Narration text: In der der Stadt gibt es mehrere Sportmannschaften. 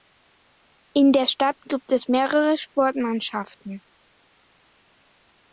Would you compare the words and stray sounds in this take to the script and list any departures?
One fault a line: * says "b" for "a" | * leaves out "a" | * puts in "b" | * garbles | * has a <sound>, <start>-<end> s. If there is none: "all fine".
* leaves out "der"